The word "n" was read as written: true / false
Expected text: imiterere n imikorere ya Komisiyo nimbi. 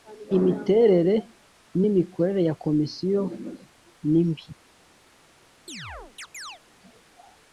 true